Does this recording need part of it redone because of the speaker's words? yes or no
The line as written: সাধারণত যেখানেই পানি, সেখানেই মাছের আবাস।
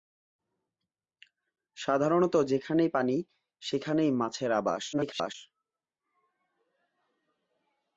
yes